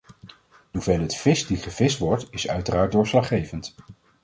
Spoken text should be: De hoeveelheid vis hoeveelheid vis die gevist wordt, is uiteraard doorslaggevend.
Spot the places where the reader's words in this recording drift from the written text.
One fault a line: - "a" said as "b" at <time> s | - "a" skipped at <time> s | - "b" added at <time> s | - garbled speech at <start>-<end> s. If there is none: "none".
- "hoeveelheid vis" skipped at 1.5 s